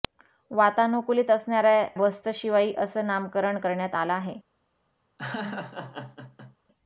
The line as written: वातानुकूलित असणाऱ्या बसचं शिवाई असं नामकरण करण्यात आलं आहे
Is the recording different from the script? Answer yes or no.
no